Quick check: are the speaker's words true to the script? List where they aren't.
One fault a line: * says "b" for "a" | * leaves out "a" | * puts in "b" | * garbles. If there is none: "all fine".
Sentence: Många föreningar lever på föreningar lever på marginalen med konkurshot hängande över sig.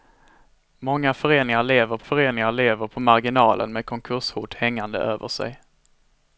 all fine